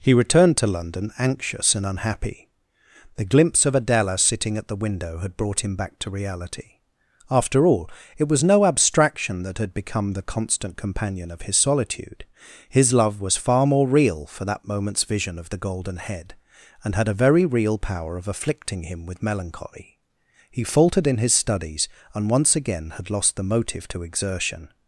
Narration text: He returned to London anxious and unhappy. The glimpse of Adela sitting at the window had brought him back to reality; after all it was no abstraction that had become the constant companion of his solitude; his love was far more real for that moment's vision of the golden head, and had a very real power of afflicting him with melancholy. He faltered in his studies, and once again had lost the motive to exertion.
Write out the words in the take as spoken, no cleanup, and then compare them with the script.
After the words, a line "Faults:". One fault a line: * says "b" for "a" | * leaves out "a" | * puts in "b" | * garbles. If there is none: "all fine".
He returned to London anxious and unhappy. The glimpse of Adela sitting at the window had brought him back to reality; after all it was no abstraction that had become the constant companion of his solitude; his love was far more real for that moment's vision of the golden head, and had a very real power of afflicting him with melancholy. He faltered in his studies, and once again had lost the motive to exertion.
Faults:
all fine